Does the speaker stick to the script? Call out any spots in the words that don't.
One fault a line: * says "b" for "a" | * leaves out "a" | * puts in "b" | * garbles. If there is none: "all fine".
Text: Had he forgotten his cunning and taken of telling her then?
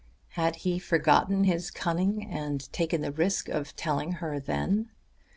* puts in "the risk"